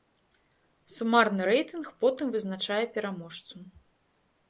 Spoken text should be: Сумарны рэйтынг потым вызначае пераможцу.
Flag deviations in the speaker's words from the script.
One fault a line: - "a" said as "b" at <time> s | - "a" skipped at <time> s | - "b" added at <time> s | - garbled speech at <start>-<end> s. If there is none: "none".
none